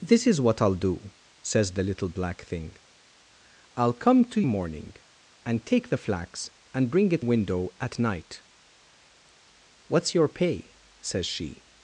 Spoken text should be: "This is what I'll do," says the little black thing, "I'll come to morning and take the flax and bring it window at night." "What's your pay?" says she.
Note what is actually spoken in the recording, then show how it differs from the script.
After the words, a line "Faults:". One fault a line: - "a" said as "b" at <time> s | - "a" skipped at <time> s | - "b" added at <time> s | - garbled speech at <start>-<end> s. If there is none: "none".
"This is what I'll do," says the little black thing, "I'll come to morning and take the flax and bring it window at night." "What's your pay?" says she.
Faults:
none